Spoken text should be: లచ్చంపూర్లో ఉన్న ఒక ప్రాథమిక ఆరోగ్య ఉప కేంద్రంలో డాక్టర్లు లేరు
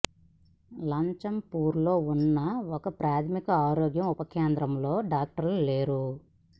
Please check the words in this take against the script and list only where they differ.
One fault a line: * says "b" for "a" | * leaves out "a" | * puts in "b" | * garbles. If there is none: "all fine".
all fine